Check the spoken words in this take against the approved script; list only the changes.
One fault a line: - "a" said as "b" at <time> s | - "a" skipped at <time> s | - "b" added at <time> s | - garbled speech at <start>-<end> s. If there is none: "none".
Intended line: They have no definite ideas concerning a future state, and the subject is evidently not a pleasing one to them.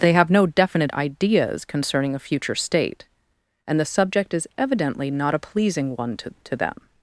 - "to" added at 6.4 s